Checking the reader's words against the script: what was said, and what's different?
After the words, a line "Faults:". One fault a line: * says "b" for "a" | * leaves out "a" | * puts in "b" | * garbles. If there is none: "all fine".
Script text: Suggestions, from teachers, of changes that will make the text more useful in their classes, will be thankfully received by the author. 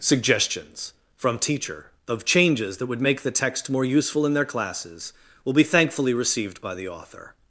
Suggestions, from teacher, of changes that would make the text more useful in their classes, will be thankfully received by the author.
Faults:
* says "teacher" for "teachers"
* says "would" for "will"